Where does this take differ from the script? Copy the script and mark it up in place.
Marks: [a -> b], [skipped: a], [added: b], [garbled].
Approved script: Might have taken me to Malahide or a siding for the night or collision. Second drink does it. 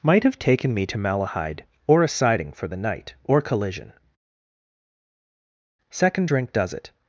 Might have taken me to Malahide or a siding for the night or collision. Second drink does it.